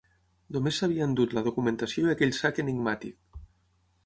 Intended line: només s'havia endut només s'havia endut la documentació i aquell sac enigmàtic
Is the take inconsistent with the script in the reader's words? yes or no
yes